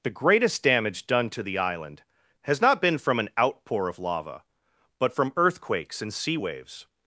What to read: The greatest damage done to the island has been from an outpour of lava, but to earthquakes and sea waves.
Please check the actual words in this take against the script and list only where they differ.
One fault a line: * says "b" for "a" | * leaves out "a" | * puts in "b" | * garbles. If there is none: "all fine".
* puts in "not"
* says "from" for "to"